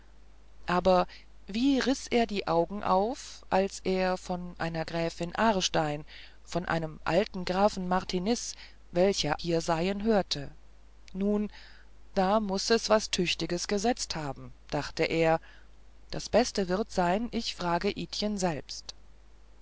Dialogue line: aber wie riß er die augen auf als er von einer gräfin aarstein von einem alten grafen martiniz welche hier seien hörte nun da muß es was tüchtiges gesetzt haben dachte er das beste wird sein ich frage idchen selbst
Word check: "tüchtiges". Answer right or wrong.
right